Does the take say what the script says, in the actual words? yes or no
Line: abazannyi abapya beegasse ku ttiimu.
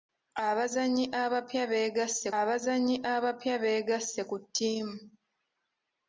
no